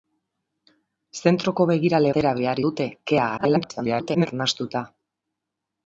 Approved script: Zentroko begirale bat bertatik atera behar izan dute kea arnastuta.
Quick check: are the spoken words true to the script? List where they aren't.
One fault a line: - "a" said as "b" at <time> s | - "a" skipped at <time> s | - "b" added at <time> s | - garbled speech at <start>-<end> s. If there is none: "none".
- "bat bertatik" skipped at 2.1 s
- "izan" skipped at 2.6 s
- garbled speech at 3.4-4.3 s